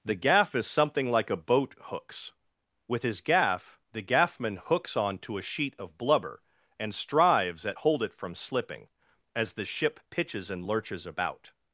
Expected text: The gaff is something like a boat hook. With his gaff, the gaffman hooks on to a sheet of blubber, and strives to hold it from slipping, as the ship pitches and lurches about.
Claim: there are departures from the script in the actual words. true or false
true